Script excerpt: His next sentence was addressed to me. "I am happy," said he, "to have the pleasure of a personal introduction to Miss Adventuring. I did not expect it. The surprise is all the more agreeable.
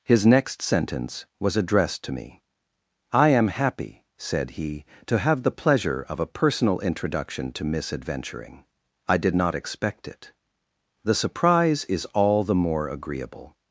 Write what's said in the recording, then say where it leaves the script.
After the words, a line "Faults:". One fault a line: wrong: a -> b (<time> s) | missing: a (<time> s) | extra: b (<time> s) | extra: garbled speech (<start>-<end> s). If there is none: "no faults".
His next sentence was addressed to me. "I am happy," said he, "to have the pleasure of a personal introduction to Miss Adventuring. I did not expect it. The surprise is all the more agreeable.
Faults:
no faults